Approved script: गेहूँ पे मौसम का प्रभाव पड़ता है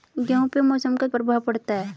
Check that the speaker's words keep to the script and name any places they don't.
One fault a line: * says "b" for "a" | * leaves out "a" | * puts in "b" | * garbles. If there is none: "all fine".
all fine